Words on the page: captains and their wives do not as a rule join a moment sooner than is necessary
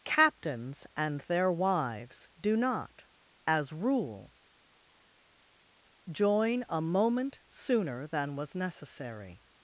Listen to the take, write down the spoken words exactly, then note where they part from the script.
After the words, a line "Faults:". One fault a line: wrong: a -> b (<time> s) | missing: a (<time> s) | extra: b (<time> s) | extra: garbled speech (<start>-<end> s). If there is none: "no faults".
captains and their wives do not as rule join a moment sooner than was necessary
Faults:
missing: a (3.7 s)
wrong: is -> was (8.3 s)